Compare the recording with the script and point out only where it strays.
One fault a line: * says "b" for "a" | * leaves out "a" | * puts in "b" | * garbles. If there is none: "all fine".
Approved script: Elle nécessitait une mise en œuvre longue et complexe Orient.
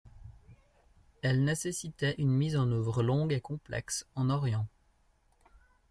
* puts in "en"